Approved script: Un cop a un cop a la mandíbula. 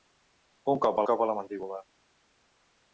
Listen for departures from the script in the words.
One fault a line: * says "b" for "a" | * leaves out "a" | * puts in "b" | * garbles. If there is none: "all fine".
all fine